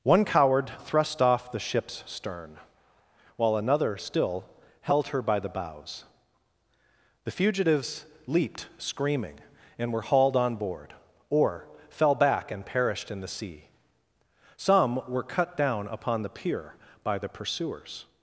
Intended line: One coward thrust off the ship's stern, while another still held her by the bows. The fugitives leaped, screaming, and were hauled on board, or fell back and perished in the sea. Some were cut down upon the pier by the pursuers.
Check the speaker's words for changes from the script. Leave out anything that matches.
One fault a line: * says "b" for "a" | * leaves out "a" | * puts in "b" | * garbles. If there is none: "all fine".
all fine